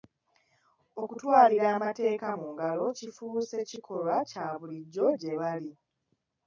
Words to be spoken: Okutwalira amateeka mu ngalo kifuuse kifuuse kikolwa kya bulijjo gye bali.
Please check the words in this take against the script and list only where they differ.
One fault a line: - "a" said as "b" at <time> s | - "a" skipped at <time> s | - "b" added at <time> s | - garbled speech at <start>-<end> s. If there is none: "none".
- "kifuuse" skipped at 3.6 s